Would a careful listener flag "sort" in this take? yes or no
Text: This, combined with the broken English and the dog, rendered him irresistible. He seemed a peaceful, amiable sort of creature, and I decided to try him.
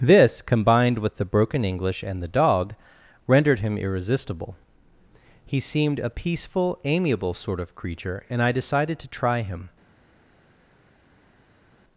no